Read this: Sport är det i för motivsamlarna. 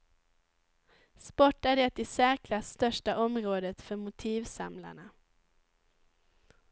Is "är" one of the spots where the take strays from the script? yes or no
no